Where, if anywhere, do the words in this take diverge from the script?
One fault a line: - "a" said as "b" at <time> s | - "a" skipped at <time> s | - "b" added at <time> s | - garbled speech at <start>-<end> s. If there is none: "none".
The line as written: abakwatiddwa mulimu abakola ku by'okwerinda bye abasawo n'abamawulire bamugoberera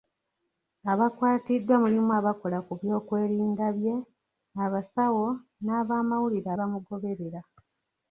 none